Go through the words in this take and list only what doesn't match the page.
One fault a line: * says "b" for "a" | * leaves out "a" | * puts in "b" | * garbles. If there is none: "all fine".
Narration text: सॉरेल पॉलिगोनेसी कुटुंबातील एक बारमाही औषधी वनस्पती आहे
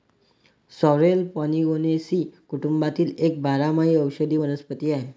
all fine